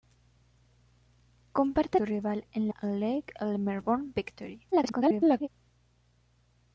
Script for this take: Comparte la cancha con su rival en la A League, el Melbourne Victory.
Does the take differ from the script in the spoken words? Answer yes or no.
yes